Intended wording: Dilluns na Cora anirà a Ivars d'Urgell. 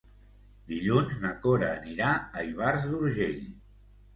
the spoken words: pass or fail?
pass